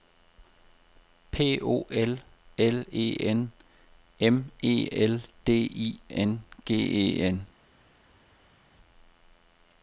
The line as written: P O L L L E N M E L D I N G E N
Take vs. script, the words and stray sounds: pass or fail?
fail